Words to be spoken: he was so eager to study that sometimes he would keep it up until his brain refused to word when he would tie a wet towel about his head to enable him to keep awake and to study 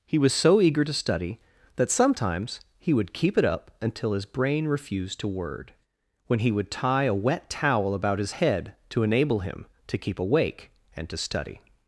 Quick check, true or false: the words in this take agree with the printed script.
true